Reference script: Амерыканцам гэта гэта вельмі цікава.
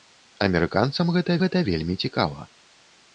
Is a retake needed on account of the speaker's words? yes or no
no